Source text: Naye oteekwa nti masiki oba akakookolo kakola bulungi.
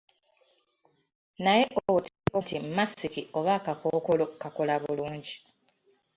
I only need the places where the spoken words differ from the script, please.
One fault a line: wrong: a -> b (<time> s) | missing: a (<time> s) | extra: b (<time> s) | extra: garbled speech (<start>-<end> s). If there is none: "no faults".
no faults